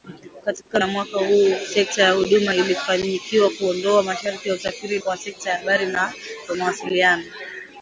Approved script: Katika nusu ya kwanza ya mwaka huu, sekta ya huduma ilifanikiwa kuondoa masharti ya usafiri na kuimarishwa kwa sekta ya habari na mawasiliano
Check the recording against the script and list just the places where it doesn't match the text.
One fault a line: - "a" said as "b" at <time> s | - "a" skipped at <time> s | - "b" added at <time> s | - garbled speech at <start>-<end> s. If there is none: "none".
- "nusu" skipped at 0.8 s
- "kwanza ya" skipped at 0.9 s
- "na kuimarishwa" skipped at 5.0 s